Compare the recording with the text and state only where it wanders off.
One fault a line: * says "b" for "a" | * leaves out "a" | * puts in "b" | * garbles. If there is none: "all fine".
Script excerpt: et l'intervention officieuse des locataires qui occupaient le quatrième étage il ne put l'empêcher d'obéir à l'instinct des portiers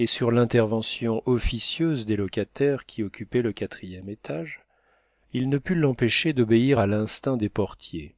* puts in "sur"